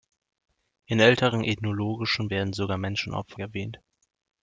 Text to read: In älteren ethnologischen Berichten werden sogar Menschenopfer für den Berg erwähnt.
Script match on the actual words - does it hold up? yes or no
no